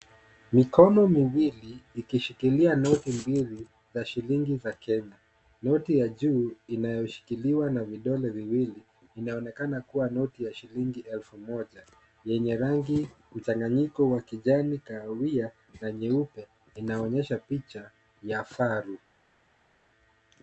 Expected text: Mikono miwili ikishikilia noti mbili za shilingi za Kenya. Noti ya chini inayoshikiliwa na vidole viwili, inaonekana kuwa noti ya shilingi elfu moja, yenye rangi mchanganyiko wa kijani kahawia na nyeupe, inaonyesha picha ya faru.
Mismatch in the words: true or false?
true